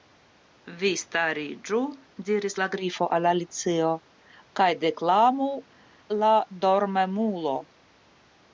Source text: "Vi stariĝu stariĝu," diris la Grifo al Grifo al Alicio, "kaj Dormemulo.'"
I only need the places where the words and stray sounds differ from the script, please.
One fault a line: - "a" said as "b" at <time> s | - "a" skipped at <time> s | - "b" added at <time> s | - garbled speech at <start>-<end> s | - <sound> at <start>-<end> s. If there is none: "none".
- "stariĝu" skipped at 1.8 s
- "Grifo al Alicio kaj" said as "Alicio kaj deklamu la" at 3.3 s